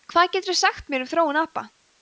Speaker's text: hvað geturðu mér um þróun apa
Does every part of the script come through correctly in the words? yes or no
no